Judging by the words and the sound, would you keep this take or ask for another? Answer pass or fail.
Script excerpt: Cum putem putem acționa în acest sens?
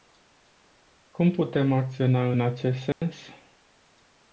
fail